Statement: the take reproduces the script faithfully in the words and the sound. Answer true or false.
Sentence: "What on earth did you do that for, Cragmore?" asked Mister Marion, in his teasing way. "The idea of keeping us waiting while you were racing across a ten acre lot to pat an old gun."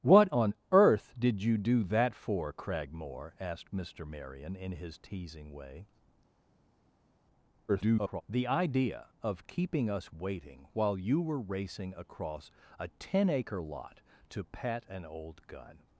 false